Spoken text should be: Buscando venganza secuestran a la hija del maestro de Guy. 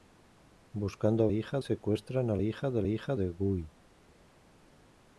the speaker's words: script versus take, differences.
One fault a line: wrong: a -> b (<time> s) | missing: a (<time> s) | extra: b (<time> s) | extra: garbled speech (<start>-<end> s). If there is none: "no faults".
wrong: venganza -> hija (1.3 s)
missing: la (2.4 s)
wrong: maestro -> hija (2.9 s)